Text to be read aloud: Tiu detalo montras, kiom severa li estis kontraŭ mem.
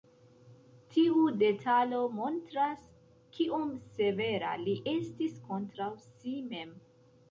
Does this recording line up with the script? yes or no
no